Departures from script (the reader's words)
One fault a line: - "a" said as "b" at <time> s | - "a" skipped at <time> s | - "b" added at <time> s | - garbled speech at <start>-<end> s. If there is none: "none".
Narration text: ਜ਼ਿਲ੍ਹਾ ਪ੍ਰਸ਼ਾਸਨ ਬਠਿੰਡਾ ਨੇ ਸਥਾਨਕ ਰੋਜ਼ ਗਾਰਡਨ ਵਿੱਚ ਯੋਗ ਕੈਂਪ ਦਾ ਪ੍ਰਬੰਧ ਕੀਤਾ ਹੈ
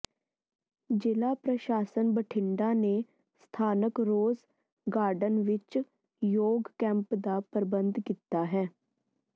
none